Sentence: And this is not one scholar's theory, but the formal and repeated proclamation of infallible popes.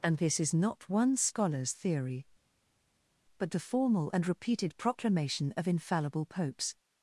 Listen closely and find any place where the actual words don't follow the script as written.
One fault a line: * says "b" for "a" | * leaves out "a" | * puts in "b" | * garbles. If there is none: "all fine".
all fine